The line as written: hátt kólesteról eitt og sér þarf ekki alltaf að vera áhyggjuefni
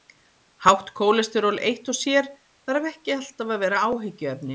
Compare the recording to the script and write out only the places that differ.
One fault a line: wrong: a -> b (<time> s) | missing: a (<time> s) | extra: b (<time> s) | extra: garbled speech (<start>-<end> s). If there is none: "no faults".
no faults